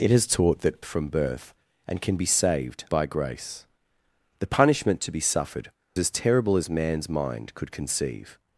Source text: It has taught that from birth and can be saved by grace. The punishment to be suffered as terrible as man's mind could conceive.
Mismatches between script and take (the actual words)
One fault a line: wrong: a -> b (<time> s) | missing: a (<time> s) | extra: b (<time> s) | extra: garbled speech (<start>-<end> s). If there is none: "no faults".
no faults